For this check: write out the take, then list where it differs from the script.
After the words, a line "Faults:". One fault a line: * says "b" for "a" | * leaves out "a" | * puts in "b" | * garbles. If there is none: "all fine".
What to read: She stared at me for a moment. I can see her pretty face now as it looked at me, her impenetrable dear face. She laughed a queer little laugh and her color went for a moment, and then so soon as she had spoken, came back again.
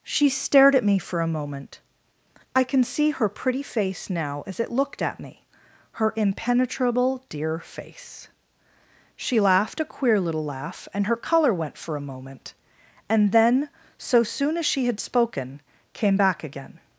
She stared at me for a moment. I can see her pretty face now as it looked at me, her impenetrable dear face. She laughed a queer little laugh and her color went for a moment, and then so soon as she had spoken, came back again.
Faults:
all fine